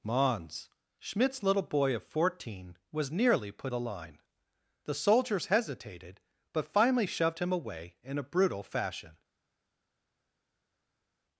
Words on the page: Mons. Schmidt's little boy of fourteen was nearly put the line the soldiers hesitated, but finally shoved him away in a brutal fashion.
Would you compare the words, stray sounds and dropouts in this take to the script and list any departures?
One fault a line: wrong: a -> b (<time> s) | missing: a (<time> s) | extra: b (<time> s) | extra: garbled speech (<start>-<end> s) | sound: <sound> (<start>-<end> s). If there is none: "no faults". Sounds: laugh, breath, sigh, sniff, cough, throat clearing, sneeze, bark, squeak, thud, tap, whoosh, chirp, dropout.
no faults